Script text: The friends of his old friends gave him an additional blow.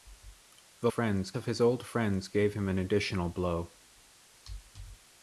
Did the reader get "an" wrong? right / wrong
right